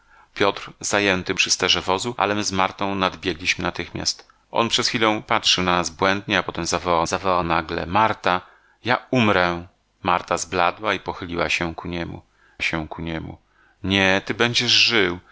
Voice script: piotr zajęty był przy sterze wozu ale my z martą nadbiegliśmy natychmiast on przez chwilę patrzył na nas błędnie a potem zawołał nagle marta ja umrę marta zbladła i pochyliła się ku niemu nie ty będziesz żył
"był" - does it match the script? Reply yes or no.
no